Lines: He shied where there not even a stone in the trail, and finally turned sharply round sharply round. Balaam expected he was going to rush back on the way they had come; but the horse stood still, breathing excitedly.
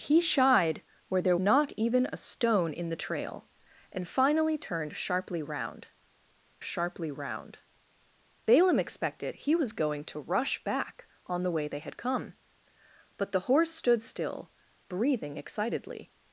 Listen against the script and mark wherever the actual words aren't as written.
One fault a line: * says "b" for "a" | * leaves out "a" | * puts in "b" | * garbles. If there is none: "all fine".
all fine